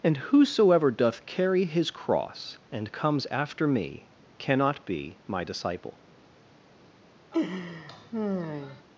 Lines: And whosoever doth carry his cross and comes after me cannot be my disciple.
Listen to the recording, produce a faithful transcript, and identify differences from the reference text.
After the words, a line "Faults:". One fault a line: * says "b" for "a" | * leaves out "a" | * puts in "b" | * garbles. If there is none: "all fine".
And whosoever doth carry his cross and comes after me cannot be my disciple.
Faults:
all fine